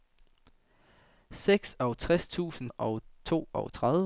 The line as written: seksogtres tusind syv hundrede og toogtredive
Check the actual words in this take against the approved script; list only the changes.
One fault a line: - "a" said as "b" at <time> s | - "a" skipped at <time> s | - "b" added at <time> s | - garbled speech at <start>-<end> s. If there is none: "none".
- "syv hundrede" skipped at 2.7 s